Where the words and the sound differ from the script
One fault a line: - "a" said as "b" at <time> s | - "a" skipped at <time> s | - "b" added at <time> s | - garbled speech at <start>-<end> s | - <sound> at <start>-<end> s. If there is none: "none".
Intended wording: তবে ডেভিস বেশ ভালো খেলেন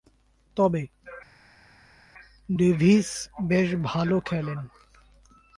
none